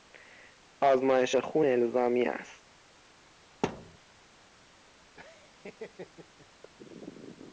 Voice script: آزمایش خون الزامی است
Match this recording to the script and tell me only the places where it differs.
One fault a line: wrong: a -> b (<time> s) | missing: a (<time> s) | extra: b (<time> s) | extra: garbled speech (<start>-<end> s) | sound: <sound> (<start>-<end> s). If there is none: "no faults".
sound: thud (3.6-4.0 s)
sound: laugh (5.2-6.5 s)